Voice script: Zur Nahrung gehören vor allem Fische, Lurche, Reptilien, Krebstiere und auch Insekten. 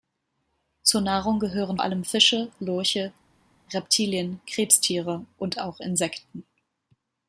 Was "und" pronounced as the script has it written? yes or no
yes